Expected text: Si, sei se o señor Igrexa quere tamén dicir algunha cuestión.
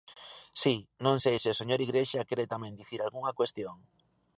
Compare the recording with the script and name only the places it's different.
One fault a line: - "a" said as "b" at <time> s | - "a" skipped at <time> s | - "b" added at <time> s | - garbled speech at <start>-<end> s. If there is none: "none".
- "non" added at 1.1 s